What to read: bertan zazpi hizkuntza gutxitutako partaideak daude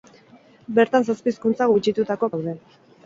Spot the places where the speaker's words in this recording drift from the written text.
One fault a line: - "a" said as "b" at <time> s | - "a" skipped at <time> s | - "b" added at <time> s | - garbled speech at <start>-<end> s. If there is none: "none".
- "partaideak" skipped at 2.3 s